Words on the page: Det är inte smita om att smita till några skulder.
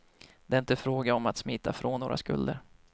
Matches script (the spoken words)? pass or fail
fail